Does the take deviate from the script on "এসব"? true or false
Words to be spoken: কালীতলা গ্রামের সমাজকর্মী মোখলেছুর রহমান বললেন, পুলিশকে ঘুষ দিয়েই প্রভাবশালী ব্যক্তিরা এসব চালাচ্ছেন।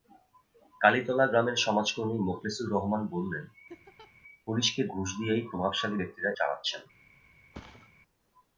true